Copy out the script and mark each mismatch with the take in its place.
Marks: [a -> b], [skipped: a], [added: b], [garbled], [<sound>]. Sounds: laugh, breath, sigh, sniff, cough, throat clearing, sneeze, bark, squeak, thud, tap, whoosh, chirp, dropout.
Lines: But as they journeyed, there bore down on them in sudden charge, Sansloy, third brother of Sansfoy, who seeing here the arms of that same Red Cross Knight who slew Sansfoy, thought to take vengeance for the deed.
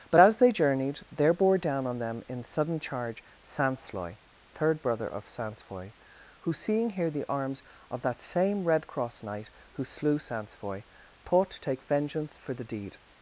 But as they journeyed, there bore down on them in sudden charge, Sansloy, third brother of Sansfoy, who seeing here the arms of that same Red Cross Knight who slew Sansfoy, thought to take vengeance for the deed.